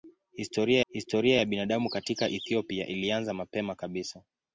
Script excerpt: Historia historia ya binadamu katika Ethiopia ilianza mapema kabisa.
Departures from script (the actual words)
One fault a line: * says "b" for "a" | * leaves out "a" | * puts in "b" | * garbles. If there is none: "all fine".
all fine